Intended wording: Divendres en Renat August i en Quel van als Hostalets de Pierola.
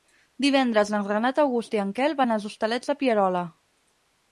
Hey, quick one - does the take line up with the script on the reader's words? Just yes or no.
yes